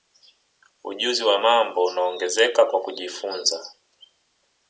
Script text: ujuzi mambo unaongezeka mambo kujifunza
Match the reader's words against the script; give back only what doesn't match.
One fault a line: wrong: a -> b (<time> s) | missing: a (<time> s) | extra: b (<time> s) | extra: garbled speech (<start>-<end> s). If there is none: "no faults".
extra: wa (1.2 s)
wrong: mambo -> kwa (2.7 s)